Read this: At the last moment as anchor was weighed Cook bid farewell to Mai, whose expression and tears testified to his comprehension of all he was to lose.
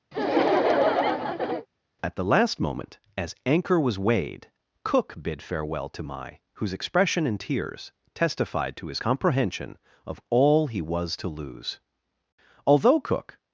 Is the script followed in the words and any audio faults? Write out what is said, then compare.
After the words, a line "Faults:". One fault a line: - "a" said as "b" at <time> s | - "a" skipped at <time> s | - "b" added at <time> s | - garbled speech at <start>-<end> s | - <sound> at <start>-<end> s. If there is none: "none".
At the last moment as anchor was weighed Cook bid farewell to Mai, whose expression and tears testified to his comprehension of all he was to lose. Although Cook
Faults:
- laugh at 0.1-1.7 s
- "Although Cook" added at 12.7 s